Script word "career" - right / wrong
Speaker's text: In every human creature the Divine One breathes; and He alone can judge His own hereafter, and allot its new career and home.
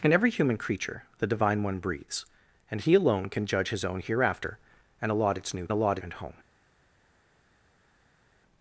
wrong